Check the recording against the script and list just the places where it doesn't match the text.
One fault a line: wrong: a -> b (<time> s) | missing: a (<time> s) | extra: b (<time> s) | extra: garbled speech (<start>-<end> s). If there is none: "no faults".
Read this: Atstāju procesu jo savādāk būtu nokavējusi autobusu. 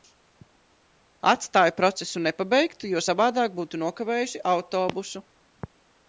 extra: nepabeigtu (2.3 s)